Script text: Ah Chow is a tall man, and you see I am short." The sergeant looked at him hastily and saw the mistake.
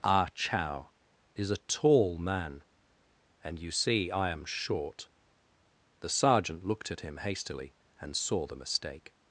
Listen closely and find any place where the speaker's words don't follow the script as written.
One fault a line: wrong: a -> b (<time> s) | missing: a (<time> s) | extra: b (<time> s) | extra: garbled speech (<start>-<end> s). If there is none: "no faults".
no faults